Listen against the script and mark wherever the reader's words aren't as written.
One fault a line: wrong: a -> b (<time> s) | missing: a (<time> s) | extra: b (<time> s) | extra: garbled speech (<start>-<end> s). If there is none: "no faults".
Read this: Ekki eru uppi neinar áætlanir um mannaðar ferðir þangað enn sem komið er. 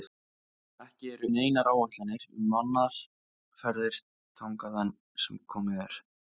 missing: uppi (1.3 s)